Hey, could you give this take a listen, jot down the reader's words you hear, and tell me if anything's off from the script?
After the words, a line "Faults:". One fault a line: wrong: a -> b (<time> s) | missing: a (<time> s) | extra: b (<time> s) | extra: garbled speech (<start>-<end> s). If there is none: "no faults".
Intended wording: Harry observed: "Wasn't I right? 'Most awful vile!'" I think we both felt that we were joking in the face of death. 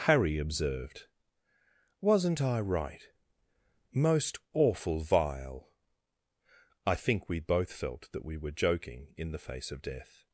Harry observed: "Wasn't I right? 'Most awful vile!'" I think we both felt that we were joking in the face of death.
Faults:
no faults